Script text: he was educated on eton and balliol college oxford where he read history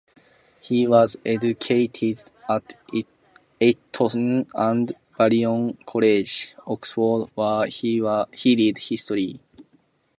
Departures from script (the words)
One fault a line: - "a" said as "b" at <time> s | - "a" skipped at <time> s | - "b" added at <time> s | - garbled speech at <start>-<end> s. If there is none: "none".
- "on" said as "at" at 2.5 s